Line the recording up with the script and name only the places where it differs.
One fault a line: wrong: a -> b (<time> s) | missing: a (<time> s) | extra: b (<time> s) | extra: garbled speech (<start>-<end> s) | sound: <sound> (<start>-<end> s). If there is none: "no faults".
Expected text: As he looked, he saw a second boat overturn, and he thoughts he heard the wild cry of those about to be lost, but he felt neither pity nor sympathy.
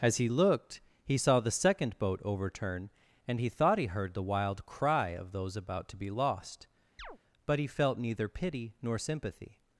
wrong: a -> the (1.4 s)
wrong: thoughts -> thought (3.5 s)
sound: chirp (7.0-7.2 s)